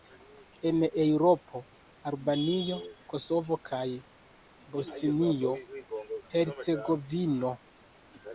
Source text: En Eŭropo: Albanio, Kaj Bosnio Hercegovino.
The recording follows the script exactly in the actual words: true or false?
false